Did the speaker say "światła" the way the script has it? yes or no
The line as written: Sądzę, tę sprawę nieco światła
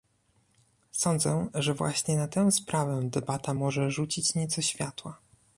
yes